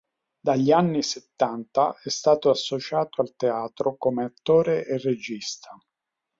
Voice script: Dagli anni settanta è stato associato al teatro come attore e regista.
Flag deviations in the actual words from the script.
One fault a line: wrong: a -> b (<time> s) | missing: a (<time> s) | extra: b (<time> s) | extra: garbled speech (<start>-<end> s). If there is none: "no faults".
no faults